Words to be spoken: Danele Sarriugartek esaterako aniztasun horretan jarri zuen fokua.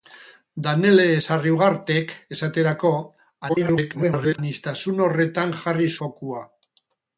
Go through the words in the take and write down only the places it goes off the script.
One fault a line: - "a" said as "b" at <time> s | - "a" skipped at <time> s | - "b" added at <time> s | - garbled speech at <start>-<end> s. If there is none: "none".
- garbled speech at 3.5-4.4 s
- "zuen" skipped at 5.9 s